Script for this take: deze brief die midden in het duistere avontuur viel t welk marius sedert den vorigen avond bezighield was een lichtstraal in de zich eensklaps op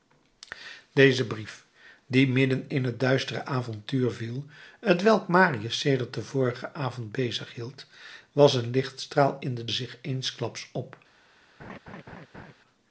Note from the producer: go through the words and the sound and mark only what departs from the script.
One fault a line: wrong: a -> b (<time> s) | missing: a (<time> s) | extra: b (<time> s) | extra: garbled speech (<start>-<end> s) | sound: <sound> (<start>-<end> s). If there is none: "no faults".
sound: laugh (11.6-12.5 s)